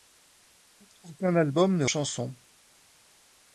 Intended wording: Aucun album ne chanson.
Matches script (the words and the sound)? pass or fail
pass